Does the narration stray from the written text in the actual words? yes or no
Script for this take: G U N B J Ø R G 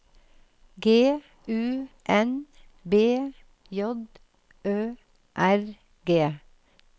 no